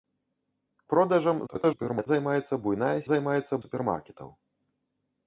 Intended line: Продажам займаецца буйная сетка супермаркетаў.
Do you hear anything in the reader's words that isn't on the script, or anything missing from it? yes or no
yes